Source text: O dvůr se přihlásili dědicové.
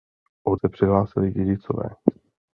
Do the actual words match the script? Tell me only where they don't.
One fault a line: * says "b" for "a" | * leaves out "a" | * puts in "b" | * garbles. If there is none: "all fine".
* leaves out "dvůr"